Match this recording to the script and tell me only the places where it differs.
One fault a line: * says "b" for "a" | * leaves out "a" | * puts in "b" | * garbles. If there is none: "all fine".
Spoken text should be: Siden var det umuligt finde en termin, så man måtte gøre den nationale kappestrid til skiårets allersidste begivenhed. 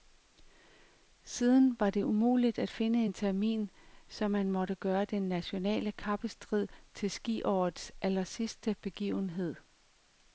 * puts in "at"